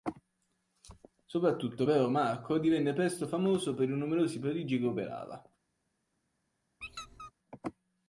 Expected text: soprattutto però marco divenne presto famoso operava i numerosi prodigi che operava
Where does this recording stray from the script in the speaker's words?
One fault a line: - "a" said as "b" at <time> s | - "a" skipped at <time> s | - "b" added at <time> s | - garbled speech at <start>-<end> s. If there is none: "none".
- "operava" said as "per" at 3.7 s